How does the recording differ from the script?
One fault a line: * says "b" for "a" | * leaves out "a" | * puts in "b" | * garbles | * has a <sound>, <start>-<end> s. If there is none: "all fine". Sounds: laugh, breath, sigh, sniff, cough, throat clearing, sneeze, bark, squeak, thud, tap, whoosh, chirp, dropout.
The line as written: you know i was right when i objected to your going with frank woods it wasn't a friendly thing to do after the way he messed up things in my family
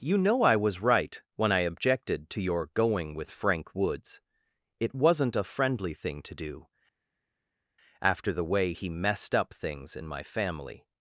all fine